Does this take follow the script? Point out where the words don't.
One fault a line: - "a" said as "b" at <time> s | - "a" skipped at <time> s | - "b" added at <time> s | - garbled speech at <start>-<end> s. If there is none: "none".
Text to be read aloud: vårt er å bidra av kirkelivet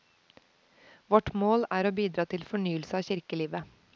- "mål" added at 1.3 s
- "til fornyelse" added at 2.3 s